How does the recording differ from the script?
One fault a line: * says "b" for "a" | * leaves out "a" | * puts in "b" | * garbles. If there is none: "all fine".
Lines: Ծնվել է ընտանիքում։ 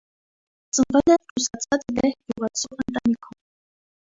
* puts in "ռուսացած լեհ գյուղացու"